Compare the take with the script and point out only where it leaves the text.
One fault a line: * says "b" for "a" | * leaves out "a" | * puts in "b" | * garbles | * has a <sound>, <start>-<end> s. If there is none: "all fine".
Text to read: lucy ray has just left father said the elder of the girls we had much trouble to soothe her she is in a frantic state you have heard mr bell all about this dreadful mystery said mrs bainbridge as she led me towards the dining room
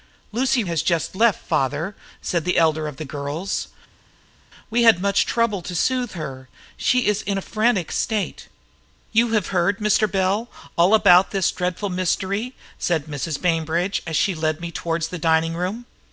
* leaves out "ray"